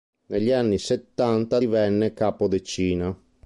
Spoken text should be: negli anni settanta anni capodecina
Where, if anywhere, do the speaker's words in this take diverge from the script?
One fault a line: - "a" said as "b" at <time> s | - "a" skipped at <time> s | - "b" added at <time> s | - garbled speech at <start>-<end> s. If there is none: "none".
- "anni" said as "divenne" at 1.5 s